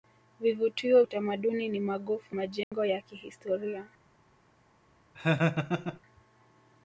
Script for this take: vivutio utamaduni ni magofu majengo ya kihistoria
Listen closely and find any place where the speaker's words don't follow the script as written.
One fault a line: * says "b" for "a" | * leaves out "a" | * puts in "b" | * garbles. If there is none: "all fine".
all fine